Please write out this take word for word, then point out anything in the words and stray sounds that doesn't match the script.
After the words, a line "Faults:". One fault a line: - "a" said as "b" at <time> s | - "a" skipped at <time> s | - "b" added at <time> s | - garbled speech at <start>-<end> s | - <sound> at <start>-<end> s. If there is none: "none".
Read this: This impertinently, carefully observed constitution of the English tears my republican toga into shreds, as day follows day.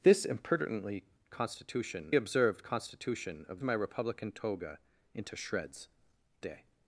This impertinently, constitution observed constitution of my republican toga into shreds, day.
Faults:
- "carefully" said as "constitution" at 1.3 s
- "the English tears" skipped at 3.6 s
- "as day follows" skipped at 5.9 s